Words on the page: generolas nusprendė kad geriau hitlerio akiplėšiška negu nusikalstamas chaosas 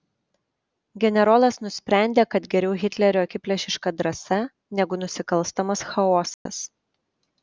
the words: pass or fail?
fail